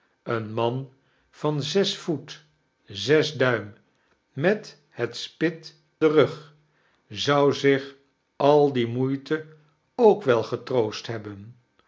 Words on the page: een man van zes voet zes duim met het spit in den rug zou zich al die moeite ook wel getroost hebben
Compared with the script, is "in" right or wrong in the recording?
wrong